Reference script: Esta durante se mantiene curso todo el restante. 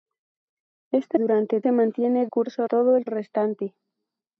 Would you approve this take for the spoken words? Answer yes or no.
yes